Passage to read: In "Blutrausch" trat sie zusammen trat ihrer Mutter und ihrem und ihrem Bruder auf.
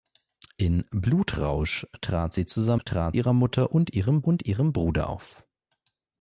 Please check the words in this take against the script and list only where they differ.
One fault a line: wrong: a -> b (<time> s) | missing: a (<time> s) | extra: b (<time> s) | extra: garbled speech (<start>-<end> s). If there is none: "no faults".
no faults